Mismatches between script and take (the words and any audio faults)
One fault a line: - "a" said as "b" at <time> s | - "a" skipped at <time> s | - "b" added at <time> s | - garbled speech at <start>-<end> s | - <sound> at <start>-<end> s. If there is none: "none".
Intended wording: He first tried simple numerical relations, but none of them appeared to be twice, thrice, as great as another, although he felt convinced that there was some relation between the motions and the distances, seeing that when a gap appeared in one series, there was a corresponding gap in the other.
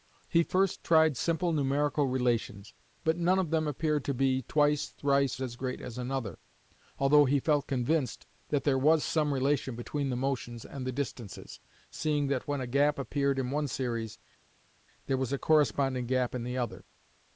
none